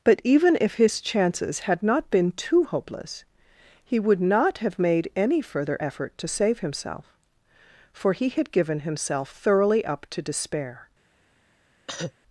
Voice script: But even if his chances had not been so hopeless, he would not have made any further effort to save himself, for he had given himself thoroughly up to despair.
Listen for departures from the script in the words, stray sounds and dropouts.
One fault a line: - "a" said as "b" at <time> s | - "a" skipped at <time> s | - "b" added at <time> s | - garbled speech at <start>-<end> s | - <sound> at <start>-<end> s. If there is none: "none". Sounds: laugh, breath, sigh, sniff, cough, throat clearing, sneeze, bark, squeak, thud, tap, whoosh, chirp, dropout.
- "so" said as "too" at 2.3 s
- cough at 11.9-12.1 s